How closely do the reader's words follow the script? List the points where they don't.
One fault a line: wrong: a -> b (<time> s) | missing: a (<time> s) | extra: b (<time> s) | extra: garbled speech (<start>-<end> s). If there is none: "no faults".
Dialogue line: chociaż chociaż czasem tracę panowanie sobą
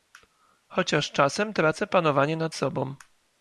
missing: chociaż (1.1 s)
extra: nad (2.4 s)